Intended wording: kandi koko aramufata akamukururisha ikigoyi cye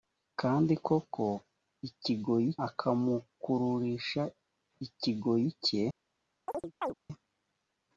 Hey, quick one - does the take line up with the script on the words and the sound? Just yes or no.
no